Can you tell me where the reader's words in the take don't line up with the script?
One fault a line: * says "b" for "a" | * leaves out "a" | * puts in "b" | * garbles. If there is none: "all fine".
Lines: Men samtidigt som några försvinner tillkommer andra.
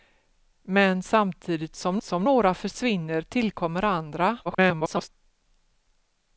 * puts in "som"
* garbles